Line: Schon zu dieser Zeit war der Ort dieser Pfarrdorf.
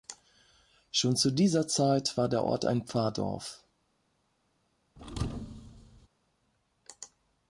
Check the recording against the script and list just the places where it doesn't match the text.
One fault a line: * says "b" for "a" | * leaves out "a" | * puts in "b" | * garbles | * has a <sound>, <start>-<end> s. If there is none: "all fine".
* says "ein" for "dieser"
* has a thud, 5.0-6.1 s